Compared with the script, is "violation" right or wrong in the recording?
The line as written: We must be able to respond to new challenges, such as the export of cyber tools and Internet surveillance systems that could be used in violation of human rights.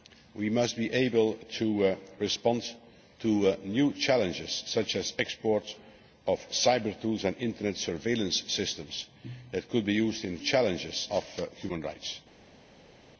wrong